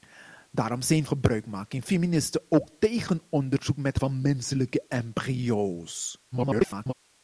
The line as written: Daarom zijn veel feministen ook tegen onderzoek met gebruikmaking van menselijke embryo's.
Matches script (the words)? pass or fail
fail